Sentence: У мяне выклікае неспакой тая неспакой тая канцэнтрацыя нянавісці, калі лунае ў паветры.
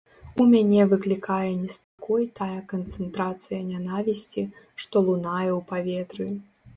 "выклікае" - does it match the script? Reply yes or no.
yes